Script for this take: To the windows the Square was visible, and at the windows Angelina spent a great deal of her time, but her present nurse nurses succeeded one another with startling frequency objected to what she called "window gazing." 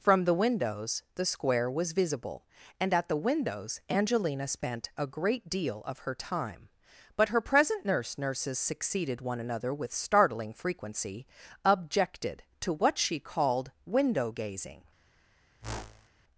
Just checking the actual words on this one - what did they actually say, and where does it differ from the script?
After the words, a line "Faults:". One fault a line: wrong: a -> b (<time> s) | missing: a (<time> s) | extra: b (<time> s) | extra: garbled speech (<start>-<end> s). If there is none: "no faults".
From the windows the Square was visible, and at the windows Angelina spent a great deal of her time, but her present nurse nurses succeeded one another with startling frequency objected to what she called "window gazing."
Faults:
wrong: To -> From (0.0 s)